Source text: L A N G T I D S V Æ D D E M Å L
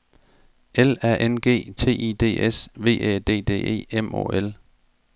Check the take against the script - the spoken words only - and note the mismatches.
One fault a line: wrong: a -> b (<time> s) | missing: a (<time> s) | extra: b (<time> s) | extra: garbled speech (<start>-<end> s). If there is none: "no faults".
no faults